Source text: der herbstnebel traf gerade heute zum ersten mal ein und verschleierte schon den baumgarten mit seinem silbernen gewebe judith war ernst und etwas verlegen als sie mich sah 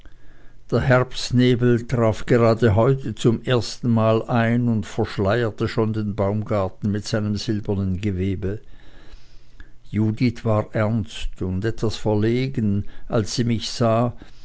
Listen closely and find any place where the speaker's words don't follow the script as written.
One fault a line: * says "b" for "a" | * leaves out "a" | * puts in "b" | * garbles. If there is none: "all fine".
all fine